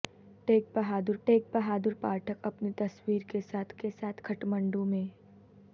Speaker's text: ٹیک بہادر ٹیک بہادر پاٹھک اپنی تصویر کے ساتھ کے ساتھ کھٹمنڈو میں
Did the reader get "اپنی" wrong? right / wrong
right